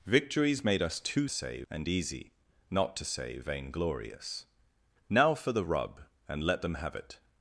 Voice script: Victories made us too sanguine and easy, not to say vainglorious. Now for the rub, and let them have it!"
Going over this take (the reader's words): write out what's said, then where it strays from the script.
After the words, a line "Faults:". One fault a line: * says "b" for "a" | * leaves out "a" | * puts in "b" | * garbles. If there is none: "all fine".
Victories made us too say and easy, not to say vainglorious. Now for the rub, and let them have it!"
Faults:
* says "say" for "sanguine"